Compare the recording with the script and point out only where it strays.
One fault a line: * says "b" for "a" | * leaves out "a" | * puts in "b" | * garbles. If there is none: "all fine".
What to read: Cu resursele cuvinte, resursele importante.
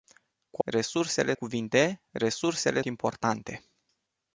all fine